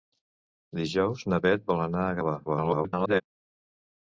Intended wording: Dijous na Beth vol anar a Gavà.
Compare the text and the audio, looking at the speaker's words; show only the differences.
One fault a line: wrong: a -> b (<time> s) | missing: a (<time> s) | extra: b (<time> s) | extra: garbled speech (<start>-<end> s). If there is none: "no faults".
extra: garbled speech (2.5-3.2 s)